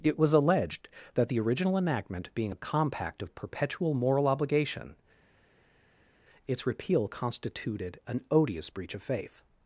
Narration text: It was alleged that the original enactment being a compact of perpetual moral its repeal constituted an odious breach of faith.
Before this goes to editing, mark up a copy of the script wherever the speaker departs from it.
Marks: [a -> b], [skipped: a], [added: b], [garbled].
It was alleged that the original enactment being a compact of perpetual moral [added: obligation] its repeal constituted an odious breach of faith.